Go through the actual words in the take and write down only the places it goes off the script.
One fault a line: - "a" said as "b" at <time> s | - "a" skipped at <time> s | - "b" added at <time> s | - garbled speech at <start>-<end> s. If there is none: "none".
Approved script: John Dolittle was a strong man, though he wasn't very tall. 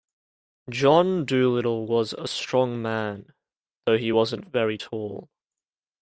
none